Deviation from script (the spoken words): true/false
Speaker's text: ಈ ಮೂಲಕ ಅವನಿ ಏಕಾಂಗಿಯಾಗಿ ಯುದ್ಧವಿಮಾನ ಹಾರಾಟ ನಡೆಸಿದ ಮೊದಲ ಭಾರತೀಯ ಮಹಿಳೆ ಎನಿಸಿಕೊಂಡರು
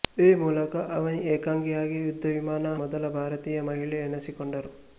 true